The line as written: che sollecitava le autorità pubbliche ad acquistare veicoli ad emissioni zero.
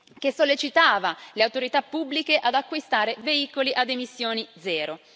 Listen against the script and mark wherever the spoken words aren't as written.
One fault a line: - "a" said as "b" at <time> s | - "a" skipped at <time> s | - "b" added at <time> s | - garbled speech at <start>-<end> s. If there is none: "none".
none